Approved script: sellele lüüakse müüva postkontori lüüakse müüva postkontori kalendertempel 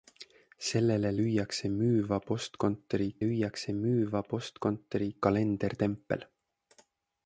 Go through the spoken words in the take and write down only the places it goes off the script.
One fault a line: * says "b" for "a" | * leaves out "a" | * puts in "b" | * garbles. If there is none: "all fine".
all fine